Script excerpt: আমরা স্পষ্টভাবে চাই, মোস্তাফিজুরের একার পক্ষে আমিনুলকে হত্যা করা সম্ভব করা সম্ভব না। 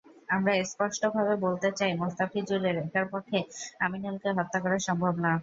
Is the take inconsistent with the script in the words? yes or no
yes